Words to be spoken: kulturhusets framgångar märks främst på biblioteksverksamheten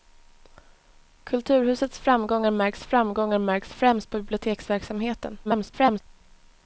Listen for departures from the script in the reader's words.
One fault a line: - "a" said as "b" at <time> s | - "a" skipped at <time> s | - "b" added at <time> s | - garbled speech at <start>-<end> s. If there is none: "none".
- "framgångar märks" added at 2.8 s
- garbled speech at 5.4-6.0 s